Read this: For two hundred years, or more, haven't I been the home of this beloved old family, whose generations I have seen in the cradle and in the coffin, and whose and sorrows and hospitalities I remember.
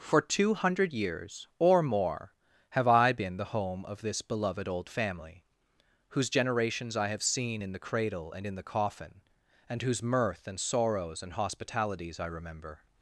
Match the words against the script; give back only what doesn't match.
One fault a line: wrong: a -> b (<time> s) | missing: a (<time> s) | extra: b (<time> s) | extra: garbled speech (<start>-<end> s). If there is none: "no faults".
wrong: haven't -> have (2.7 s)
extra: mirth (10.0 s)